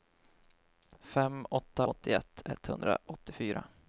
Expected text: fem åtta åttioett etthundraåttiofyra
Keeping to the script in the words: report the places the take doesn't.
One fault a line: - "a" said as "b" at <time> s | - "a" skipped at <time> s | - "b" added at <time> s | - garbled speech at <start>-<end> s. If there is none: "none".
none